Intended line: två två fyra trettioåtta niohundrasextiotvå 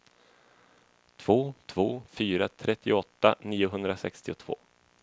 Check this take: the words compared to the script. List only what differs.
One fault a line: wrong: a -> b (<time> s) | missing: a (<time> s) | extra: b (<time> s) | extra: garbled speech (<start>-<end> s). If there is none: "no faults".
no faults